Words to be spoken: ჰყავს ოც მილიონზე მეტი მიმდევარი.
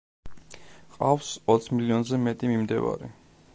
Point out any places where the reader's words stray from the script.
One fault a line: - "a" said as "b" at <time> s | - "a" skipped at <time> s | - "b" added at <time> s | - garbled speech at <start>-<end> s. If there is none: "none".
none